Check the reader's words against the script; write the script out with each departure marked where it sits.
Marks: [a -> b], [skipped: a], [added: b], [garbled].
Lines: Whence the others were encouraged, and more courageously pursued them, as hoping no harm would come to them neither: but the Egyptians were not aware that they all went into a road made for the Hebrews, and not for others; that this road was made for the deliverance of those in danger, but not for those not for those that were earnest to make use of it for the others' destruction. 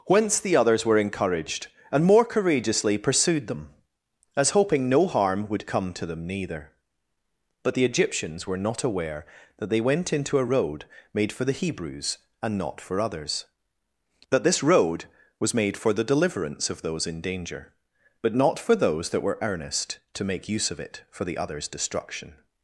Whence the others were encouraged, and more courageously pursued them, as hoping no harm would come to them neither: but the Egyptians were not aware that they [skipped: all] went into a road made for the Hebrews, and not for others; that this road was made for the deliverance of those in danger, but not for those [skipped: not for those] that were earnest to make use of it for the others' destruction.